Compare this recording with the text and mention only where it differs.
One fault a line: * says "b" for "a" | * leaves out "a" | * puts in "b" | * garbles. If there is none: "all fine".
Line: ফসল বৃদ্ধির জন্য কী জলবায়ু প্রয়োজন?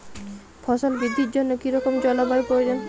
* puts in "রকম"